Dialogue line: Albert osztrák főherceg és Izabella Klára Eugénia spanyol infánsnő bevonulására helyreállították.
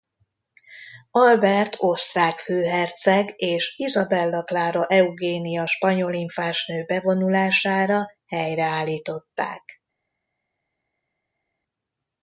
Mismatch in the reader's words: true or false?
false